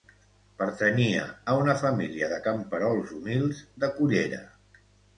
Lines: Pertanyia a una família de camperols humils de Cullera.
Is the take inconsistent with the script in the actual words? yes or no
no